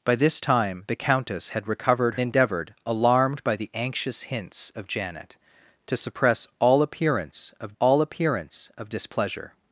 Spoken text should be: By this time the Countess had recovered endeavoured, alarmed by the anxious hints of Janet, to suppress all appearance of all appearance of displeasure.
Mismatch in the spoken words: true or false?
false